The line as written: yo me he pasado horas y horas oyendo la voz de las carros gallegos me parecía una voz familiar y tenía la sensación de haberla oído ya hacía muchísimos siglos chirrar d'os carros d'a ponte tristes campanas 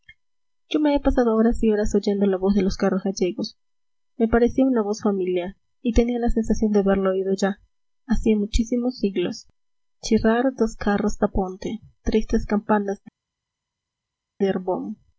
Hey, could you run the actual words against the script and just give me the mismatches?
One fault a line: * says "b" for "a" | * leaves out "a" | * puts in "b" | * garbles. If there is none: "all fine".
* says "los" for "las"